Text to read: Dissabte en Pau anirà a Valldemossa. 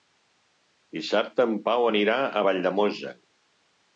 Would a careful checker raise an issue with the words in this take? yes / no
no